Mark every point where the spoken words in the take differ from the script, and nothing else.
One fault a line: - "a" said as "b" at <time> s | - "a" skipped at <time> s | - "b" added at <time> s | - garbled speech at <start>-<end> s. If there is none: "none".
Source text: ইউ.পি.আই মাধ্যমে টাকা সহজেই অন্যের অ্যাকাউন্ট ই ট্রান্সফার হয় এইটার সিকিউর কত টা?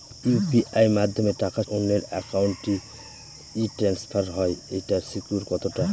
- "সহজেই" skipped at 1.6 s